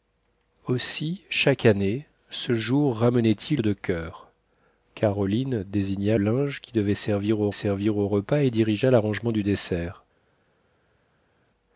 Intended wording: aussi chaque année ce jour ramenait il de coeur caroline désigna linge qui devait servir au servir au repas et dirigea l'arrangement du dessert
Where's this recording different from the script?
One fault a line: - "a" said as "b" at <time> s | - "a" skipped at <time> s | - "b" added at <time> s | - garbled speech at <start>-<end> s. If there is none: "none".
none